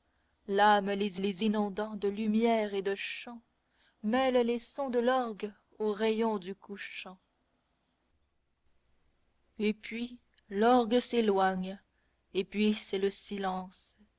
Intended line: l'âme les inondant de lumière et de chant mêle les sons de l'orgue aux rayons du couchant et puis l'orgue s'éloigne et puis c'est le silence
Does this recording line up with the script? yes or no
no